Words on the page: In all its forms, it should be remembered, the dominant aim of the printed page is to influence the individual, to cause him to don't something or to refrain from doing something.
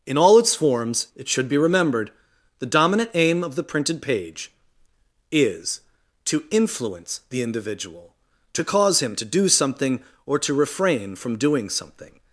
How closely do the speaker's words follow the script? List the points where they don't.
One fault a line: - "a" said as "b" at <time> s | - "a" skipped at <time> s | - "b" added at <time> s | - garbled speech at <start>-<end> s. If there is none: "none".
- "don't" said as "do" at 9.2 s